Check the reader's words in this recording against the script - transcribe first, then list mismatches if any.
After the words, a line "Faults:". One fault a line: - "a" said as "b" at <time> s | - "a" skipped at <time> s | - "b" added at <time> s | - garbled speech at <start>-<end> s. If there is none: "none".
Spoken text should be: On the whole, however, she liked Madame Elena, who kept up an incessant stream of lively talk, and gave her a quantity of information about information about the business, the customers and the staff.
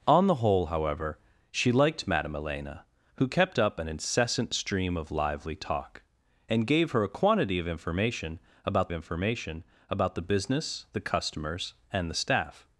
On the whole, however, she liked Madame Elena, who kept up an incessant stream of lively talk, and gave her a quantity of information about information about the business, the customers and the staff.
Faults:
none